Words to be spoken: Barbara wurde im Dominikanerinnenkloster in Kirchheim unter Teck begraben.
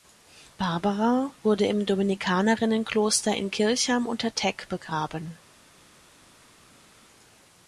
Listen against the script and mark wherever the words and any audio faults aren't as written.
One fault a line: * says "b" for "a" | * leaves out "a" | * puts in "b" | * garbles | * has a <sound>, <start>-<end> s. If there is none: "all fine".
all fine